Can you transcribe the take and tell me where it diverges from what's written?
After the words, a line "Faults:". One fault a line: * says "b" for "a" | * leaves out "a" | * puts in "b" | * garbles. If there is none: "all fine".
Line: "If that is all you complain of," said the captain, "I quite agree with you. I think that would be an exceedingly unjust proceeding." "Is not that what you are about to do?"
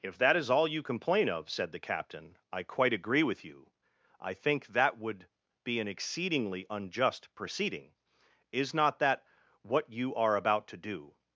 "If that is all you complain of," said the captain, "I quite agree with you. I think that would be an exceedingly unjust proceeding." "Is not that what you are about to do?"
Faults:
all fine